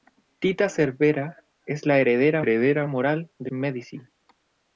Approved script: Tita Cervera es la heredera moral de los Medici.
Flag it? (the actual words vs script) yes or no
yes